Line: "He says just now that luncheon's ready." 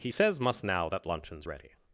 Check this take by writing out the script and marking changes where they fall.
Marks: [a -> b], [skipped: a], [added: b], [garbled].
"He says [just -> must] now that luncheon's ready."